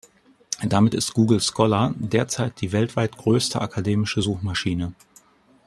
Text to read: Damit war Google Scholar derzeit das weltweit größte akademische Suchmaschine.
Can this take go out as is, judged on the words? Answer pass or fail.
fail